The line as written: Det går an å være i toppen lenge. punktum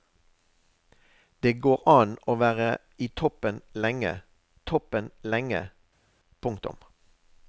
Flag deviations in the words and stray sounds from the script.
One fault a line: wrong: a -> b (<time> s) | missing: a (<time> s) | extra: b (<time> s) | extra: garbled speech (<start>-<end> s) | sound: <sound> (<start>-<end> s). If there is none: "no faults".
extra: toppen lenge (4.7 s)